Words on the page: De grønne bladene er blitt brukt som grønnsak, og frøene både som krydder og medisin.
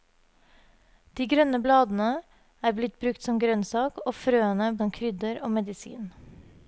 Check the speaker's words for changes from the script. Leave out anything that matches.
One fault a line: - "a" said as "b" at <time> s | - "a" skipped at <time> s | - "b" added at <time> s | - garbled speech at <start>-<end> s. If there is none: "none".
- "både" skipped at 4.7 s